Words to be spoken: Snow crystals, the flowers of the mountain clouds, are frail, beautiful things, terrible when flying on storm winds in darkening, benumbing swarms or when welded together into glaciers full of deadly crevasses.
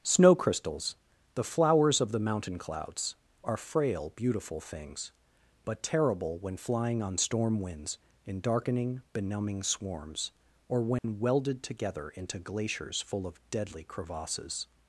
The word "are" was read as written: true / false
true